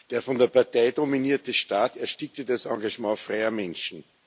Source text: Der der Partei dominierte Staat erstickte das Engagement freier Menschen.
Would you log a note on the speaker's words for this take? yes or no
yes